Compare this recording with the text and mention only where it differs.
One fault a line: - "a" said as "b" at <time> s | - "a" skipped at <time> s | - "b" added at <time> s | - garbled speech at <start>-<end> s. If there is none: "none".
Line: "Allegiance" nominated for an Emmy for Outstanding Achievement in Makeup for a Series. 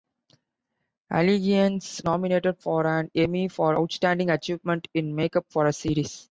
none